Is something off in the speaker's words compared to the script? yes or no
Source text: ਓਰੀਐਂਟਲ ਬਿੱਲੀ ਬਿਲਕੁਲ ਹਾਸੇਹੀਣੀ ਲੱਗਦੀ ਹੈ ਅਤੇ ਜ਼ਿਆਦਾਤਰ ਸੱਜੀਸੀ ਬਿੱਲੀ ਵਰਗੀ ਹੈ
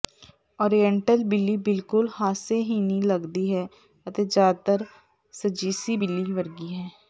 no